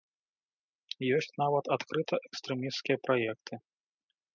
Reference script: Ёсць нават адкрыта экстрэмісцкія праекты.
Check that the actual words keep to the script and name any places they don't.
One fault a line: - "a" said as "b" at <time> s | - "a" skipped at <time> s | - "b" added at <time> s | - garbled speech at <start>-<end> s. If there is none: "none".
none